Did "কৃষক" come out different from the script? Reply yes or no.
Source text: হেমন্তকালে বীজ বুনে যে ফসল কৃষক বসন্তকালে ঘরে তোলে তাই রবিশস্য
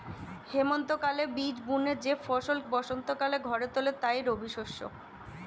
yes